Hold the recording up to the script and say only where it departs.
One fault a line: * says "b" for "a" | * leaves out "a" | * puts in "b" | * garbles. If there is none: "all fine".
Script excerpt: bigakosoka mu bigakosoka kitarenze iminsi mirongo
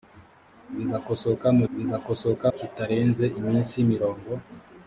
all fine